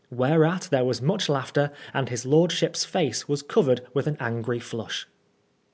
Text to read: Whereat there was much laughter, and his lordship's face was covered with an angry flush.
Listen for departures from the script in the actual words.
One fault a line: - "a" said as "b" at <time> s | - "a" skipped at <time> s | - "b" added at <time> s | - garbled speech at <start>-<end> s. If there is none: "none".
none